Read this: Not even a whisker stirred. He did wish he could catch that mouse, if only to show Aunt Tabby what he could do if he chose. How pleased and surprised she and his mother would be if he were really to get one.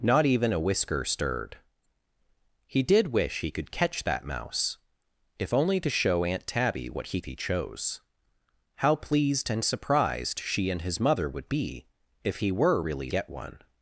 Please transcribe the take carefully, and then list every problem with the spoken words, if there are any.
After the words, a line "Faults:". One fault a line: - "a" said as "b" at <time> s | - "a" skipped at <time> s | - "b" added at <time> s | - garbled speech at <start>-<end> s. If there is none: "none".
Not even a whisker stirred. He did wish he could catch that mouse, if only to show Aunt Tabby what he he chose. How pleased and surprised she and his mother would be if he were really get one.
Faults:
- "could do if" skipped at 7.2 s
- "to" skipped at 13.1 s